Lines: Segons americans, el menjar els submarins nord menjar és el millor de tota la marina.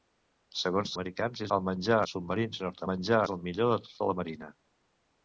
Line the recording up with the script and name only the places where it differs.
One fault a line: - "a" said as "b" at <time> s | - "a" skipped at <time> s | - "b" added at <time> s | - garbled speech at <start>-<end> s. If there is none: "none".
none